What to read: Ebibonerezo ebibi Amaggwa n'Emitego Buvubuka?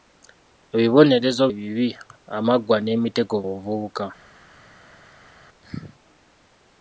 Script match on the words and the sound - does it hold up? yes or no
yes